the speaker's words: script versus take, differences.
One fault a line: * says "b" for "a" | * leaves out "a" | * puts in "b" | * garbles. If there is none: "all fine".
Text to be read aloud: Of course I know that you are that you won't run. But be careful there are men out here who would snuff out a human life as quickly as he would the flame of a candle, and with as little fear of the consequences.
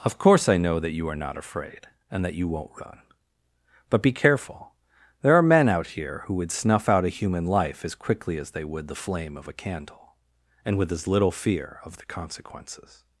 * puts in "not afraid and"
* says "they" for "he"